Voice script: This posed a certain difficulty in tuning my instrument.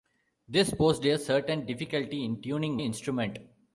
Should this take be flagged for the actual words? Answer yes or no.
yes